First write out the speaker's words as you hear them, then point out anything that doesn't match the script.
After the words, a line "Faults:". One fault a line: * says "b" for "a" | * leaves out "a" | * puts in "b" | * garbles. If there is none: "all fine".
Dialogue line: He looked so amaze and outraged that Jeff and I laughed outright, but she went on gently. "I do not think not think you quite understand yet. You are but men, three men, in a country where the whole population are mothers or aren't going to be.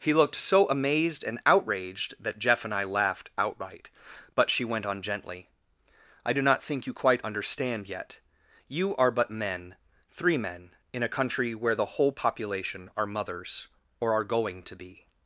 He looked so amazed and outraged that Jeff and I laughed outright, but she went on gently. "I do not think you quite understand yet. You are but men, three men, in a country where the whole population are mothers or are going to be.
Faults:
* says "amazed" for "amaze"
* leaves out "not think"
* says "are" for "aren't"